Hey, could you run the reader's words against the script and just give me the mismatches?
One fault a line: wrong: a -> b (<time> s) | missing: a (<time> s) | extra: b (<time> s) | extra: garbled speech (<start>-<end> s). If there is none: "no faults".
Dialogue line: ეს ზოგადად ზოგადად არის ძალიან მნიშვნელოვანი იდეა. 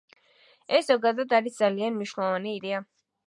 missing: ზოგადად (1.4 s)